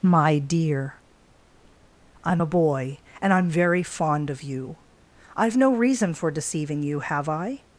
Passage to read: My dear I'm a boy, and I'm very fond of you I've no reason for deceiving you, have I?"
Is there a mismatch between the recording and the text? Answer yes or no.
no